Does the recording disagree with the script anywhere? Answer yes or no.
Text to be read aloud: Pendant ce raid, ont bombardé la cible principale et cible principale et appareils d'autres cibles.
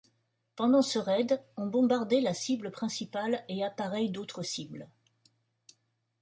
yes